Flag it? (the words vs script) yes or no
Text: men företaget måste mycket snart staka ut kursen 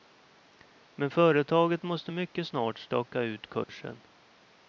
no